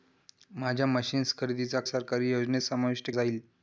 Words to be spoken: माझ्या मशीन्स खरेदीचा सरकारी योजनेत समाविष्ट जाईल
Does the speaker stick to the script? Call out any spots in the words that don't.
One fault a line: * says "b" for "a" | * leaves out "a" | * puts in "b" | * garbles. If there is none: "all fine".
all fine